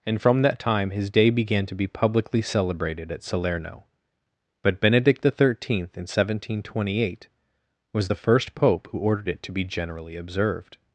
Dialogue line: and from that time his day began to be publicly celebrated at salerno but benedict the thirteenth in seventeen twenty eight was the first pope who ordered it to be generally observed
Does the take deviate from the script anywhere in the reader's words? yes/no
no